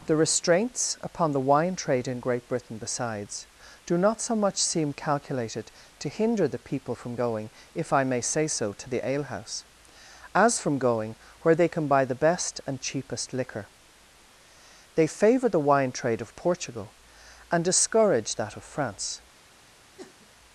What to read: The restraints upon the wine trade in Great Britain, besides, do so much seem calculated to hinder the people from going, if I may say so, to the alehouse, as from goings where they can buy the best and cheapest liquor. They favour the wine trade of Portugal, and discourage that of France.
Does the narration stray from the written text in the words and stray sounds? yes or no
yes